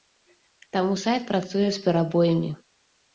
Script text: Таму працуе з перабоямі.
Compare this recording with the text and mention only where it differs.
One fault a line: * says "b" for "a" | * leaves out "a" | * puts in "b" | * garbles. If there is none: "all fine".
* puts in "сайт"